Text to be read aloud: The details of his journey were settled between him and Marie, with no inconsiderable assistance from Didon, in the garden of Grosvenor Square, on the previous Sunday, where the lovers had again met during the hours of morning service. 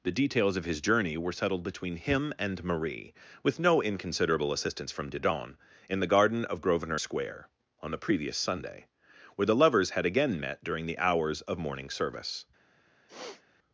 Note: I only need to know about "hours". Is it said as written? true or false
true